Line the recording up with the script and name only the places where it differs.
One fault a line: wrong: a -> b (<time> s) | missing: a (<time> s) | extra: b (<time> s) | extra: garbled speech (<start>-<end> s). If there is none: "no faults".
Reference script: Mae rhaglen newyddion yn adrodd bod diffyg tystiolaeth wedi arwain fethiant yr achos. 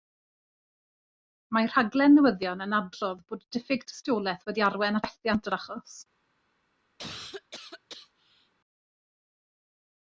no faults